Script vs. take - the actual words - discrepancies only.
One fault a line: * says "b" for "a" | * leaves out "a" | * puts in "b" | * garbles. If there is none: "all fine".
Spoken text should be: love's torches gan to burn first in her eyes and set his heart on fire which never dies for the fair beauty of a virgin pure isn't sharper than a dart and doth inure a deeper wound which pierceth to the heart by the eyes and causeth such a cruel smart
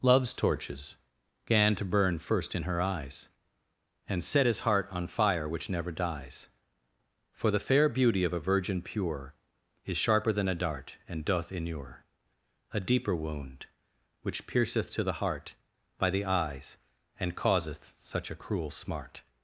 * says "is" for "isn't"